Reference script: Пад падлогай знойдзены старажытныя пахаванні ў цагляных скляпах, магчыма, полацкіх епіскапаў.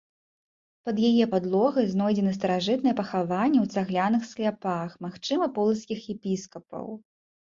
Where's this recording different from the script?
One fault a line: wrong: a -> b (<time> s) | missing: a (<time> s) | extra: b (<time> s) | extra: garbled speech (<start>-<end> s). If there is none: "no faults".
extra: яе (1.1 s)